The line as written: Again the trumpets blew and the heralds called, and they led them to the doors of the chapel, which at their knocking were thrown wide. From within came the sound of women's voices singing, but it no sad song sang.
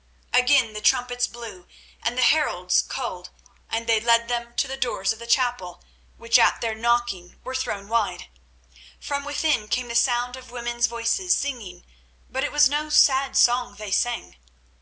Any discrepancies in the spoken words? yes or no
yes